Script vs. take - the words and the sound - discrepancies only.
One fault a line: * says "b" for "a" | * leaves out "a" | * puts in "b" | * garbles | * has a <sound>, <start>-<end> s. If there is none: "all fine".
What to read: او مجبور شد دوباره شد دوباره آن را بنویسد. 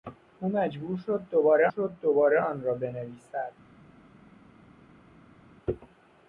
all fine